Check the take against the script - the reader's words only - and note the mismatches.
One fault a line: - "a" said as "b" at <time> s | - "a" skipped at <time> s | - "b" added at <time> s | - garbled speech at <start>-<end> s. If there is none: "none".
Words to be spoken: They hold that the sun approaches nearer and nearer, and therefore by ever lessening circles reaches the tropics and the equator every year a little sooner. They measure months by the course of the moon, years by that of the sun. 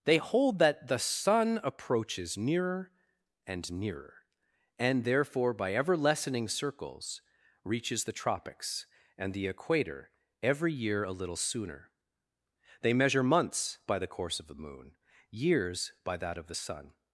none